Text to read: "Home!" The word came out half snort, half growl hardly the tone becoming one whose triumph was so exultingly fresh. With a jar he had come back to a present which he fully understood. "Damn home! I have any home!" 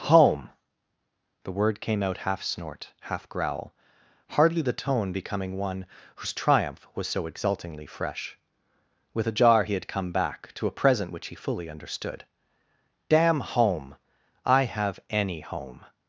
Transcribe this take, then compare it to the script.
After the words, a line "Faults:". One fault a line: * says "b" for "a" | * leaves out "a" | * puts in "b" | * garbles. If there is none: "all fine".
"Home!" The word came out half snort, half growl hardly the tone becoming one whose triumph was so exultingly fresh. With a jar he had come back to a present which he fully understood. "Damn home! I have any home!"
Faults:
all fine